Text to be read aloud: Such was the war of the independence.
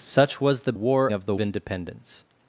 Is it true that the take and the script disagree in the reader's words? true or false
false